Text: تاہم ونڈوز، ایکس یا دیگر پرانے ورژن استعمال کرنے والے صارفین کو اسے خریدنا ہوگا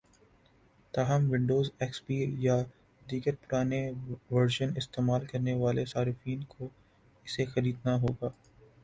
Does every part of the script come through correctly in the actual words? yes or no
no